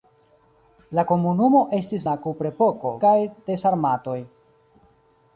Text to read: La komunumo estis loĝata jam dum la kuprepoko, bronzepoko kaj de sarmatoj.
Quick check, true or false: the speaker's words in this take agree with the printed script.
false